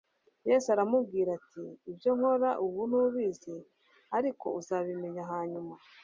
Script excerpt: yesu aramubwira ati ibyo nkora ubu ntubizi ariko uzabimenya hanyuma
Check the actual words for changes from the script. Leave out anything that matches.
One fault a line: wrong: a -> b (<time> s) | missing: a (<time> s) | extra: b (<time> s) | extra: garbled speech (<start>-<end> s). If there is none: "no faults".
no faults